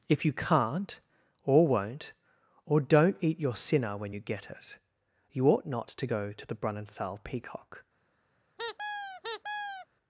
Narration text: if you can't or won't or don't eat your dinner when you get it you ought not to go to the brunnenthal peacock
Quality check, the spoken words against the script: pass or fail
fail